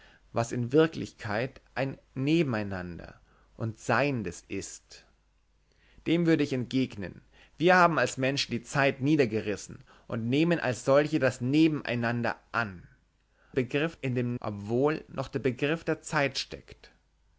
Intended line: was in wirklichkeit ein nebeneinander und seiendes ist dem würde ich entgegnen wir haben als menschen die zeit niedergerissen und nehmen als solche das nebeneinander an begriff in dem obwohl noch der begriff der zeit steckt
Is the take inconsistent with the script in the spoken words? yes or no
no